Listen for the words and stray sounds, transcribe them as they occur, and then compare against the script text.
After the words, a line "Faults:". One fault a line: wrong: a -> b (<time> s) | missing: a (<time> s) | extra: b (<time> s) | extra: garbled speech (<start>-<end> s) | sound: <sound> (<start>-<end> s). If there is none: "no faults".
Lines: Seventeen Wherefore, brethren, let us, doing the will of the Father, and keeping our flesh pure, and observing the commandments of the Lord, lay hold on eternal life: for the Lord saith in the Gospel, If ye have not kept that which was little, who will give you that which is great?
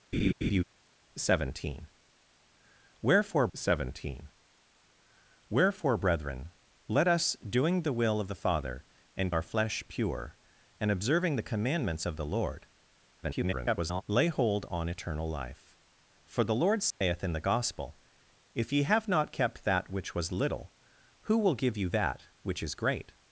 Seventeen Wherefore seventeen Wherefore, brethren, let us, doing the will of the Father, and our flesh pure, and observing the commandments of the Lord, [garbled] lay hold on eternal life: for the Lord saith in the Gospel, If ye have not kept that which was little, who will give you that which is great?
Faults:
sound: laugh (0.1-0.6 s)
extra: seventeen Wherefore (3.5 s)
missing: keeping (9.3 s)
extra: garbled speech (13.2-14.0 s)
sound: dropout (16.9-17.0 s)